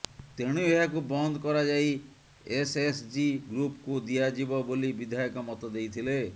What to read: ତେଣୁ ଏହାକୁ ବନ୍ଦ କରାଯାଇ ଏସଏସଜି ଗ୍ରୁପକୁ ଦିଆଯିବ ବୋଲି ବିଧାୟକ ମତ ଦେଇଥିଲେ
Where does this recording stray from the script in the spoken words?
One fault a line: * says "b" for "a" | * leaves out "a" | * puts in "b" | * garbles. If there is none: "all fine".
all fine